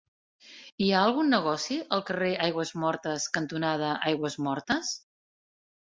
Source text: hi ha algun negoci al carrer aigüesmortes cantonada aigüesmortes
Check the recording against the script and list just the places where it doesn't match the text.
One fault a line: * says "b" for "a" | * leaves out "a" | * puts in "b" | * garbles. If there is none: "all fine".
all fine